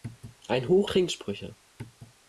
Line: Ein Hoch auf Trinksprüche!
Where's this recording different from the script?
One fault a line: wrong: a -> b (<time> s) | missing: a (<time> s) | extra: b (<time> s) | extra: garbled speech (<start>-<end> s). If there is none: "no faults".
missing: auf (0.9 s)